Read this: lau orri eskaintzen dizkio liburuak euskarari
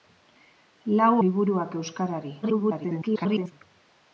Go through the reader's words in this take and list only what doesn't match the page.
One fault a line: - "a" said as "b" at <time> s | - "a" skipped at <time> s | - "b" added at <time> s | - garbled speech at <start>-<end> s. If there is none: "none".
- "orri eskaintzen dizkio" skipped at 1.1 s
- garbled speech at 2.4-3.5 s